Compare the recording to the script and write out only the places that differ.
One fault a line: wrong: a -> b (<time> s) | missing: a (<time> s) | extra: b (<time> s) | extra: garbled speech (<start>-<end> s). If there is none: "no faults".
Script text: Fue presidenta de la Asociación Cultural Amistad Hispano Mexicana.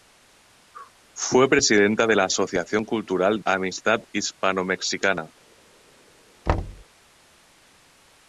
no faults